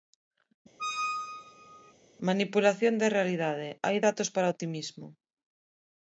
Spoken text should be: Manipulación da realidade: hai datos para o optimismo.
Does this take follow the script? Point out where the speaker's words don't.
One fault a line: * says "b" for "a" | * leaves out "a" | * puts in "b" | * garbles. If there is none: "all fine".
all fine